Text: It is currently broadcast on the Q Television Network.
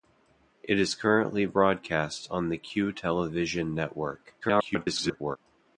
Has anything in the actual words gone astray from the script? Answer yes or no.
yes